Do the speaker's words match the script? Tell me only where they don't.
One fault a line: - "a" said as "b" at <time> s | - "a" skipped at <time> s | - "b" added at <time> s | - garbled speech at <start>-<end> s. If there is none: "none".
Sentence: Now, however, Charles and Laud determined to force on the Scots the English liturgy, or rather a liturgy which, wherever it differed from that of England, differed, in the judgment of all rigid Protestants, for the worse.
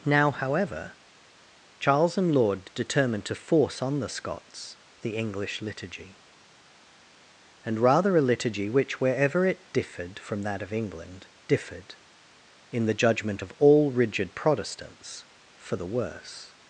- "or" said as "and" at 7.7 s